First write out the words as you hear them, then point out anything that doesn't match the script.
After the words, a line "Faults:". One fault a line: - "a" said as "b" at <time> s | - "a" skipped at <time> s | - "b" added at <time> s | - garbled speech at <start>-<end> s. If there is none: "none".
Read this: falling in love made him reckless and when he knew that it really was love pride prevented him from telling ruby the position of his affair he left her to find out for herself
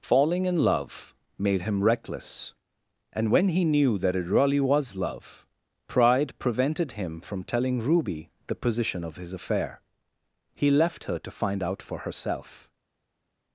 falling in love made him reckless and when he knew that it really was love pride prevented him from telling ruby the position of his affair he left her to find out for herself
Faults:
none